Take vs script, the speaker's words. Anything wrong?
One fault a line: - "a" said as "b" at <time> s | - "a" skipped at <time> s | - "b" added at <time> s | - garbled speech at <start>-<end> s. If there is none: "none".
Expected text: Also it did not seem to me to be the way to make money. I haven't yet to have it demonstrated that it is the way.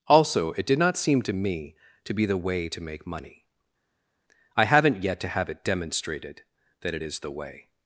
none